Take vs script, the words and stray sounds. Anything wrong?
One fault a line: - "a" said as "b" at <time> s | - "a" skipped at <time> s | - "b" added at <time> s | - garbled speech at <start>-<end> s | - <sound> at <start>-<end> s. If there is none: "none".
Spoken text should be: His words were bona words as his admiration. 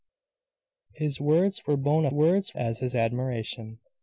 none